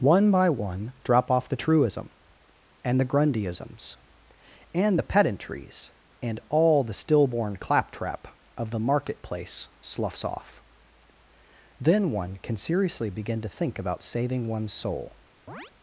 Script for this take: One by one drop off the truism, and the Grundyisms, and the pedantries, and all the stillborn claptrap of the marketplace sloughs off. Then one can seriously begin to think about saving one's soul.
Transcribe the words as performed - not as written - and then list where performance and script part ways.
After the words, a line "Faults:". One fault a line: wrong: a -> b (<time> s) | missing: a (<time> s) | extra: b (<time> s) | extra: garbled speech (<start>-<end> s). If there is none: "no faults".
One by one drop off the truism, and the Grundyisms, and the pedantries, and all the stillborn claptrap of the marketplace sloughs off. Then one can seriously begin to think about saving one's soul.
Faults:
no faults